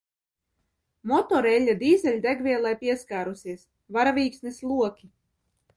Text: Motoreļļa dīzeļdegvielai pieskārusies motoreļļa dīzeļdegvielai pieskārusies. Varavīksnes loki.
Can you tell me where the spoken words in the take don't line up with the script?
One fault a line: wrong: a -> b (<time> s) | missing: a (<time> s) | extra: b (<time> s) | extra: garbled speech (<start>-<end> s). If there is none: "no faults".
missing: motoreļļa dīzeļdegvielai pieskārusies (3.7 s)